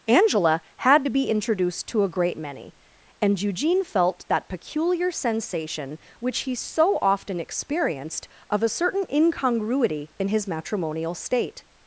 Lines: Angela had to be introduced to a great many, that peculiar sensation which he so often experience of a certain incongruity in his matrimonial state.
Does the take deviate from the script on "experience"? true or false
true